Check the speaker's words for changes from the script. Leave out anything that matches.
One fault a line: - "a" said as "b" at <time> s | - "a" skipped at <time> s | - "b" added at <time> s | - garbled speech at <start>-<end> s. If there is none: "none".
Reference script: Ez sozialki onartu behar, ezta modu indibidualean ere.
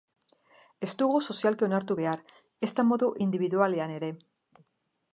- "dugu" added at 1.0 s